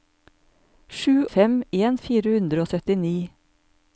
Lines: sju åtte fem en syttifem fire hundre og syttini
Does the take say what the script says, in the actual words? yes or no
no